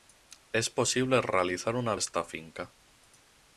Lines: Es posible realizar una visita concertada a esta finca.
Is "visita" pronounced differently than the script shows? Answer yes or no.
yes